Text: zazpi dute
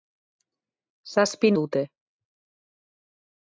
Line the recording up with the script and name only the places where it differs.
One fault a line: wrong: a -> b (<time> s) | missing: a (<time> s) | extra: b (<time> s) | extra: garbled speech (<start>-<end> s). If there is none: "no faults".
no faults